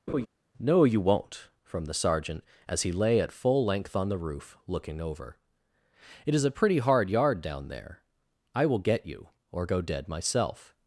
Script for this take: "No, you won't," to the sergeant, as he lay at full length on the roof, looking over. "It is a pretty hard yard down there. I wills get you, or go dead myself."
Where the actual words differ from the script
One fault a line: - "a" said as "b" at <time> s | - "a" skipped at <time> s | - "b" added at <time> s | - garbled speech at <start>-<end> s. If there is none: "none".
- "to" said as "from" at 1.6 s
- "wills" said as "will" at 8.7 s